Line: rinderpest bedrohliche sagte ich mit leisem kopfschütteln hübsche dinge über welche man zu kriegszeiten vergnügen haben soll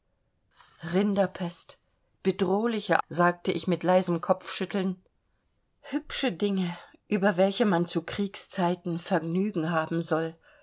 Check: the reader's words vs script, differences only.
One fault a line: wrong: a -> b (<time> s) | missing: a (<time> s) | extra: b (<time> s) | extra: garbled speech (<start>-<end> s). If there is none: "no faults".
no faults